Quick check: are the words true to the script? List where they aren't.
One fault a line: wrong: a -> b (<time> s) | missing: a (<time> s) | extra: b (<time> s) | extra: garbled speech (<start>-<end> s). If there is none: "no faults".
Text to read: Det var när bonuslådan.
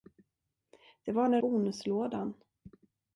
no faults